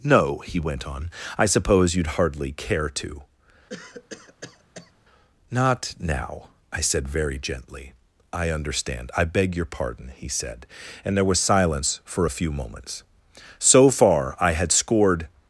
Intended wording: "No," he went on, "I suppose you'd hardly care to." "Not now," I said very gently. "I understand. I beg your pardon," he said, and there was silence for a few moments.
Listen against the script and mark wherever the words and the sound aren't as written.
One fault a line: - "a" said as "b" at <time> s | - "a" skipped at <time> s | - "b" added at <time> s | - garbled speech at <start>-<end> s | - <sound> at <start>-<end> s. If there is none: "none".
- cough at 3.7-4.9 s
- "So far I had scored" added at 13.6 s